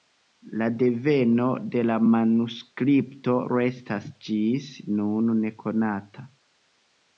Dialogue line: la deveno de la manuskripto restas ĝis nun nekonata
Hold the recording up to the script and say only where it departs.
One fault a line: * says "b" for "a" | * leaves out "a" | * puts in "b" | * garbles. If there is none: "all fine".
all fine